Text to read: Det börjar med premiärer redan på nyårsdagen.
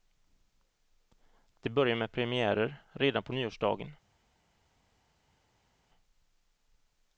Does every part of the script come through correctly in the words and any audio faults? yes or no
yes